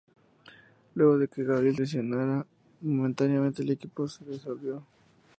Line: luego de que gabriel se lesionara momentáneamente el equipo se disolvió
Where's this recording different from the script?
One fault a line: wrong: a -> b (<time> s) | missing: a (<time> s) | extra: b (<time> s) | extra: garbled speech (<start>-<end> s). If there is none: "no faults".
missing: se (1.8 s)